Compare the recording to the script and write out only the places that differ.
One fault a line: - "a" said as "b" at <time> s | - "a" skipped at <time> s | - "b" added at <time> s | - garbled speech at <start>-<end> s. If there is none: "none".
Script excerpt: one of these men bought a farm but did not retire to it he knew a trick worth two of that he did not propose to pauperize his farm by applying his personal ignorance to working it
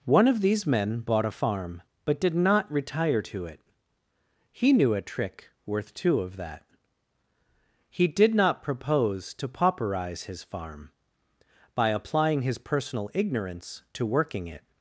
none